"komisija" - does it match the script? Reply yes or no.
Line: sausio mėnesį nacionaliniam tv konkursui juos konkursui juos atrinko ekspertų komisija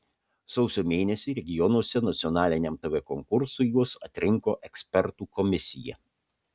yes